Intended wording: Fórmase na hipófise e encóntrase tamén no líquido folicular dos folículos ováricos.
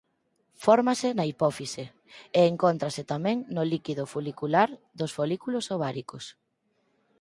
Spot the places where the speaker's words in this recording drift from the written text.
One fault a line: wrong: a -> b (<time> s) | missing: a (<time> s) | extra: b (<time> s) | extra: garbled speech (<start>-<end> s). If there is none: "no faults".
no faults